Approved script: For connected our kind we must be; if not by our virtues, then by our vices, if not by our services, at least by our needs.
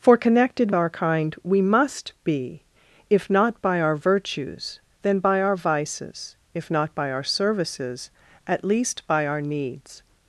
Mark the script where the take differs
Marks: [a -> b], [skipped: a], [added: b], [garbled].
For connected our kind we must be; if not by our virtues, then by our vices, if not by our services, at least by our needs.